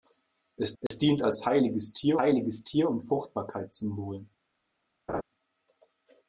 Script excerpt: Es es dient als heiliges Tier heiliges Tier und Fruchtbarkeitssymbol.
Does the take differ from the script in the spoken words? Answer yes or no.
no